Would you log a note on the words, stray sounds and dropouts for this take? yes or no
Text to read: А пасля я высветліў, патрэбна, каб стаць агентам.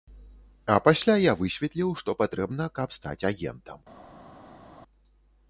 yes